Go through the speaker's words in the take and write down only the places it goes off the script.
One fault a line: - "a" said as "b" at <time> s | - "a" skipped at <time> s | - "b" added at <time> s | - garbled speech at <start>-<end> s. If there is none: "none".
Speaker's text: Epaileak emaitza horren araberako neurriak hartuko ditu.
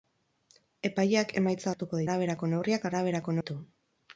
- "horren" said as "hartuko" at 1.7 s
- "hartuko" said as "araberako" at 2.9 s